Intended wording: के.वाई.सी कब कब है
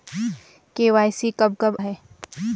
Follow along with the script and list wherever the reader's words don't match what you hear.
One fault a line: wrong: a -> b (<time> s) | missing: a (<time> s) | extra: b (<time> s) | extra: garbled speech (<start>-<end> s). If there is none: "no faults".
no faults